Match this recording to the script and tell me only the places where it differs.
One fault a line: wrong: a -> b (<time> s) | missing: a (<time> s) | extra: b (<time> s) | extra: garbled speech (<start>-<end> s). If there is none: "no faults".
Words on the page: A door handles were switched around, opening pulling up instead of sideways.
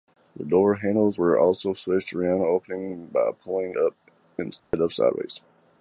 wrong: A -> The (0.3 s)
extra: also (1.4 s)
extra: by (3.1 s)